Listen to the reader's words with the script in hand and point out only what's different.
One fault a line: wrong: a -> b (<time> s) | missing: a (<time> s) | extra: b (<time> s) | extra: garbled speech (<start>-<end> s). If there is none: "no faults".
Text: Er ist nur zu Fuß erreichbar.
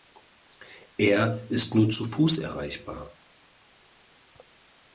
no faults